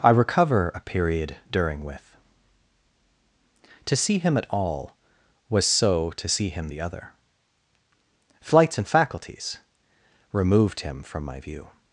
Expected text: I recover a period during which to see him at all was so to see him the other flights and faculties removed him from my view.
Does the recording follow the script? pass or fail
fail